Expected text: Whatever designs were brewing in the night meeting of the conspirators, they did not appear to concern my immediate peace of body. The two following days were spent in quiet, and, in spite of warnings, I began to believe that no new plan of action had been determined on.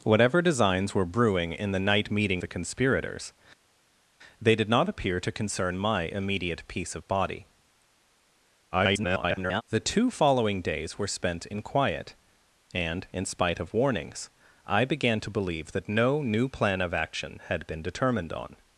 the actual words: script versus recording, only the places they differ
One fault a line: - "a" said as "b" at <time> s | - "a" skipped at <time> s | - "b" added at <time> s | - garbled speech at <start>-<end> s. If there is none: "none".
- "of" skipped at 2.4 s
- garbled speech at 8.7-9.6 s